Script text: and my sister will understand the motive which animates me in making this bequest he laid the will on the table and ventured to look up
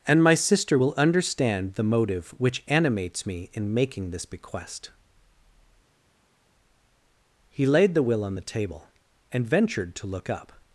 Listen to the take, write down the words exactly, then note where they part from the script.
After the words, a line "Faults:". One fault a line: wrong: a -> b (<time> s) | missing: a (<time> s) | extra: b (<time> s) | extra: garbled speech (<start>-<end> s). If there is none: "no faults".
and my sister will understand the motive which animates me in making this bequest he laid the will on the table and ventured to look up
Faults:
no faults